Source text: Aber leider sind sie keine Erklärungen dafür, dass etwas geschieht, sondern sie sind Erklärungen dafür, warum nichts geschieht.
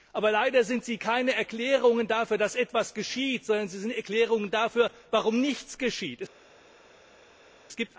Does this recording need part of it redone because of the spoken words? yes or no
no